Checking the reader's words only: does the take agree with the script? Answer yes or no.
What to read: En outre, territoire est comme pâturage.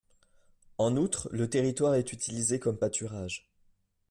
no